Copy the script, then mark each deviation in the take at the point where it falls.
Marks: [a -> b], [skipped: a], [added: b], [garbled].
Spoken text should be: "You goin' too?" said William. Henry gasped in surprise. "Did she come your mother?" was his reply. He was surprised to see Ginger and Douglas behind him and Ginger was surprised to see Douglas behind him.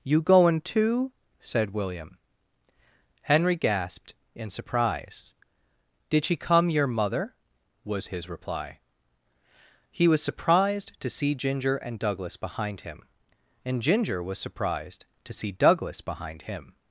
"You goin' too?" said William. Henry gasped in surprise. "Did she come your mother?" was his reply. He was surprised to see Ginger and Douglas behind him and Ginger was surprised to see Douglas behind him.